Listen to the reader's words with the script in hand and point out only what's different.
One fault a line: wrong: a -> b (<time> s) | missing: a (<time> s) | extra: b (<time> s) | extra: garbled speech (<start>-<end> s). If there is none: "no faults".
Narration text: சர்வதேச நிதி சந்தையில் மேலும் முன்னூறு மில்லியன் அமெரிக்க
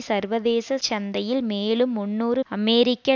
missing: நிதி (0.8 s)
missing: மில்லியன் (2.4 s)